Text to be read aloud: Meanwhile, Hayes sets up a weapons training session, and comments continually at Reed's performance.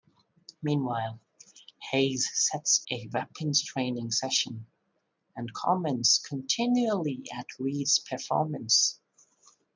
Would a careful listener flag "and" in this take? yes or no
no